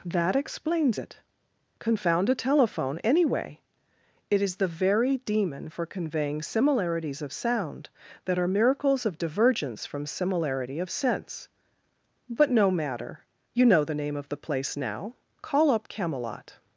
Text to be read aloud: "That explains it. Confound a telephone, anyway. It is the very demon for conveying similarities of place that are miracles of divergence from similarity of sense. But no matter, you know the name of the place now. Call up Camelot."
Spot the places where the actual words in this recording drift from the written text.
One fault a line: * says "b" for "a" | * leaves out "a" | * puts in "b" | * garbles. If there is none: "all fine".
* says "sound" for "place"